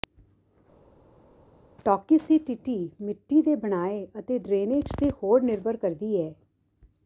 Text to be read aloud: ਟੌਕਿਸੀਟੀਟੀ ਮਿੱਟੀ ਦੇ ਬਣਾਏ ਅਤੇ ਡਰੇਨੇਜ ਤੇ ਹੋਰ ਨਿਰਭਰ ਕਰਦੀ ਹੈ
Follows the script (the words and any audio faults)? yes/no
yes